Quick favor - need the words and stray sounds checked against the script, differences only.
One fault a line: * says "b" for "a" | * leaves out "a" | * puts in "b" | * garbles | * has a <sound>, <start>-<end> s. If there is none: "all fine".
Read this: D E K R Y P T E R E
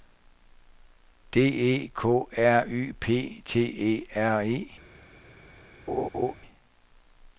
* has a laugh, 5.9-6.4 s